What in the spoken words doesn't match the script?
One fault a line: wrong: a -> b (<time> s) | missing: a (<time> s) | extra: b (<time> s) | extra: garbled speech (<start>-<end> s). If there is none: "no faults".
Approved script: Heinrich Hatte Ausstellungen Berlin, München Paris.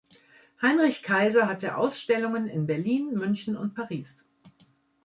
extra: Kaiser (1.0 s)
extra: in (2.5 s)
extra: und (3.6 s)